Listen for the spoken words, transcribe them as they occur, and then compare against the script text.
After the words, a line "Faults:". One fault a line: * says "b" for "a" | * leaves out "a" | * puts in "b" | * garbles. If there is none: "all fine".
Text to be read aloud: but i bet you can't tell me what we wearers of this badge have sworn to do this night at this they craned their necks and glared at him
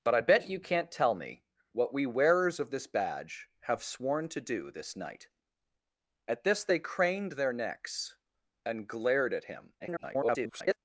but i bet you can't tell me what we wearers of this badge have sworn to do this night at this they craned their necks and glared at him [garbled]
Faults:
* garbles